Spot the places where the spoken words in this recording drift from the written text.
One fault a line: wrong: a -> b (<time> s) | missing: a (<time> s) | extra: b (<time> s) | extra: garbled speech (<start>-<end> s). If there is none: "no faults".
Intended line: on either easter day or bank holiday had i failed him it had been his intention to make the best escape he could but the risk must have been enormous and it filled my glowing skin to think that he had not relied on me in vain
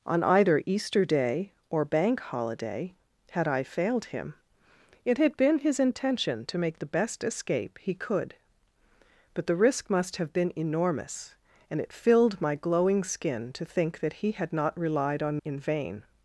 missing: me (15.4 s)